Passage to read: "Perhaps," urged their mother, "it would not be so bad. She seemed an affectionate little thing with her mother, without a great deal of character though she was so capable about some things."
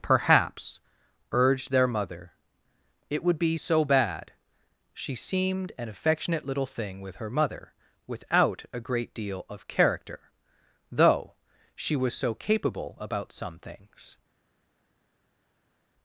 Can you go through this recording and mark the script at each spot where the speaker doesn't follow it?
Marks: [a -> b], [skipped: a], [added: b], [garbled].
"Perhaps," urged their mother, "it would [skipped: not] be so bad. She seemed an affectionate little thing with her mother, without a great deal of character though she was so capable about some things."